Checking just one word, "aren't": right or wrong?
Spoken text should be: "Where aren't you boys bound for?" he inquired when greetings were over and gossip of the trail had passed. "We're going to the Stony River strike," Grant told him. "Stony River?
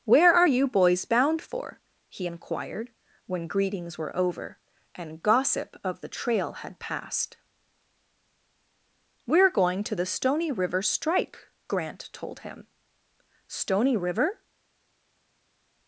wrong